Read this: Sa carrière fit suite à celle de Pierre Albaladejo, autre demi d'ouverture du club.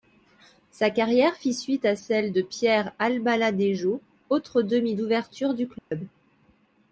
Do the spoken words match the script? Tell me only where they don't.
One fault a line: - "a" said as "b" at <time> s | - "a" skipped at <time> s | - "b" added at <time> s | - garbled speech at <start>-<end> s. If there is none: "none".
none